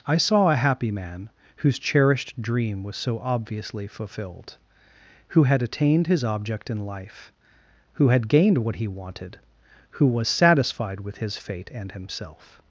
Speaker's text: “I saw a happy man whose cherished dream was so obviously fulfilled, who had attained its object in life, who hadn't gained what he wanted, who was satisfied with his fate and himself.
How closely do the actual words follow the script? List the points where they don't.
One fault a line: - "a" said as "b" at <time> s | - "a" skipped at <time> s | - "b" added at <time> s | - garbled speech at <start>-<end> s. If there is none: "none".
- "its" said as "his" at 6.1 s
- "hadn't" said as "had" at 8.1 s